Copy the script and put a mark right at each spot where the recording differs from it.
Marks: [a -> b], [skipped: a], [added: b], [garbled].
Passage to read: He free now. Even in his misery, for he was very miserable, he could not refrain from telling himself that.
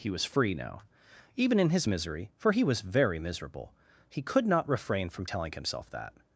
He [added: was] free now. Even in his misery, for he was very miserable, he could not refrain from telling himself that.